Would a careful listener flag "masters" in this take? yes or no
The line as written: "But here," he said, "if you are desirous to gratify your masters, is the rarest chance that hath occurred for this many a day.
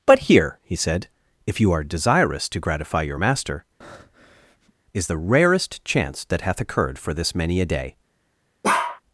yes